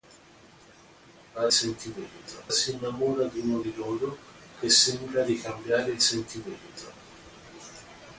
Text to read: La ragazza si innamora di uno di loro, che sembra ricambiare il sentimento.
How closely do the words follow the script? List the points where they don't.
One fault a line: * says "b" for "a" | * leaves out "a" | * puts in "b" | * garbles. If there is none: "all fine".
* says "sentimento" for "ragazza"